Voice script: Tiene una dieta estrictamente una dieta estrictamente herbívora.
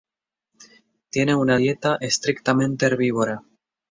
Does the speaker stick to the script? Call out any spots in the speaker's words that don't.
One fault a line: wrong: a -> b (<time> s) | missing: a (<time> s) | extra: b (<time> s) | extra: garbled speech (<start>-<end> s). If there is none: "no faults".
missing: una dieta estrictamente (2.8 s)